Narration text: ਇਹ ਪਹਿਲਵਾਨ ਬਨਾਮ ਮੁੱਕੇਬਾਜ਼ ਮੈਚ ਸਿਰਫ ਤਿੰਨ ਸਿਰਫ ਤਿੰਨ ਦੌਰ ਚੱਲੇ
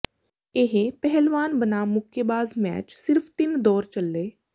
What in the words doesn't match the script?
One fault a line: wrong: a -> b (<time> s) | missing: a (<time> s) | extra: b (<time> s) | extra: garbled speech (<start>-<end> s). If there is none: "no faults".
missing: ਸਿਰਫ ਤਿੰਨ (3.6 s)